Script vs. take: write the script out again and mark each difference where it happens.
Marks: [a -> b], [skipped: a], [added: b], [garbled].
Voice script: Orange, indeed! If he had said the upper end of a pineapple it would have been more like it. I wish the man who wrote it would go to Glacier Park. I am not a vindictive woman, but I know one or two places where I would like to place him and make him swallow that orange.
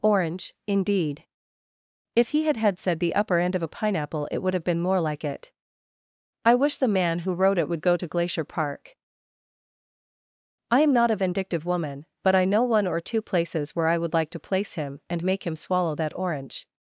Orange, indeed! If he had [added: had] said the upper end of a pineapple it would have been more like it. I wish the man who wrote it would go to Glacier Park. I am not a vindictive woman, but I know one or two places where I would like to place him and make him swallow that orange.